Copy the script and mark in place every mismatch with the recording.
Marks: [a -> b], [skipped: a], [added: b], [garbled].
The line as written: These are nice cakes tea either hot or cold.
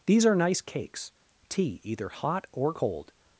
These are nice cakes tea either hot or cold.